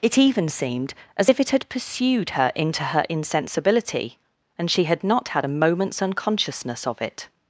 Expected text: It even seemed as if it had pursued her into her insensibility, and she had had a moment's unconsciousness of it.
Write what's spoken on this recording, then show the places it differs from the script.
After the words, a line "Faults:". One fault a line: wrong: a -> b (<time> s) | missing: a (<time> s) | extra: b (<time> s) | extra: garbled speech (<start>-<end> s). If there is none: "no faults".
It even seemed as if it had pursued her into her insensibility, and she had not had a moment's unconsciousness of it.
Faults:
extra: not (5.0 s)